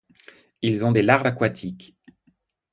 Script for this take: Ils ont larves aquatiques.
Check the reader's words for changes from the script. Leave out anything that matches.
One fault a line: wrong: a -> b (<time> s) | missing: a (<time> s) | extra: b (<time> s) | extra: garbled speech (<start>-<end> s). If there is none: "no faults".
extra: des (0.9 s)